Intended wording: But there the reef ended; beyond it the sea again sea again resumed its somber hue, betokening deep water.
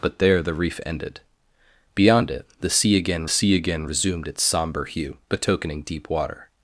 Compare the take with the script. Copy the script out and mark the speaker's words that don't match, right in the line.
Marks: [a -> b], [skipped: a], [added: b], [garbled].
But there the reef ended; beyond it the sea again sea again resumed its somber hue, betokening deep water.